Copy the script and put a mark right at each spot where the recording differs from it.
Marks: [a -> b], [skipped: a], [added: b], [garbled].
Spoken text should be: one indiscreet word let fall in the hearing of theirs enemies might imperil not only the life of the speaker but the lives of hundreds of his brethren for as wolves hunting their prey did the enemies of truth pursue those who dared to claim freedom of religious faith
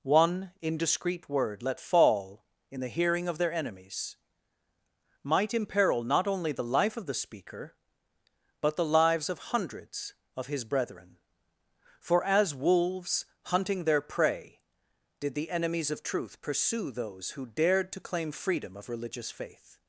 one indiscreet word let fall in the hearing of [theirs -> their] enemies might imperil not only the life of the speaker but the lives of hundreds of his brethren for as wolves hunting their prey did the enemies of truth pursue those who dared to claim freedom of religious faith